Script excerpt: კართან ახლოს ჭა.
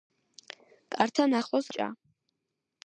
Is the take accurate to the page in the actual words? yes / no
yes